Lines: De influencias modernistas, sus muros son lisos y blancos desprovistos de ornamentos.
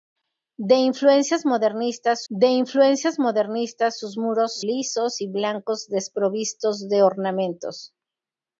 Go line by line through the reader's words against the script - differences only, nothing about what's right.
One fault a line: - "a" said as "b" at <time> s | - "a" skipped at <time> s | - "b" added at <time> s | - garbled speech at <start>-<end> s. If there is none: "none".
- "de influencias modernistas" added at 2.3 s
- "son" skipped at 4.6 s